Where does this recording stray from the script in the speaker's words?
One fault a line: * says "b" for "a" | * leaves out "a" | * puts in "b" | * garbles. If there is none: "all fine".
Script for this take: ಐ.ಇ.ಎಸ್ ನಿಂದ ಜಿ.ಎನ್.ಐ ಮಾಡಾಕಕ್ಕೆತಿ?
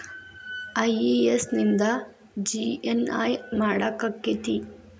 all fine